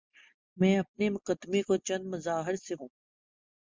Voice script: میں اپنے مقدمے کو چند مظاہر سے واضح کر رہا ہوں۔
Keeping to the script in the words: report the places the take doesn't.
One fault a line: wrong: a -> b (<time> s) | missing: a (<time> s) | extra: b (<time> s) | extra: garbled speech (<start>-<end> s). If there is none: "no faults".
missing: واضح کر رہا (2.8 s)